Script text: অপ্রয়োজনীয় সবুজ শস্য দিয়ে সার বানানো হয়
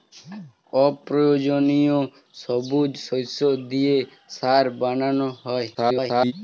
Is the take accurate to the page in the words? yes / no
no